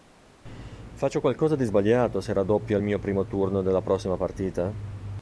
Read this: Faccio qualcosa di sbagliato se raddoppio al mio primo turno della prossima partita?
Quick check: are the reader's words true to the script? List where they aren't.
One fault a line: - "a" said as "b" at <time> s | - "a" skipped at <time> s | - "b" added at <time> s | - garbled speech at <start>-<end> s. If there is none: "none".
none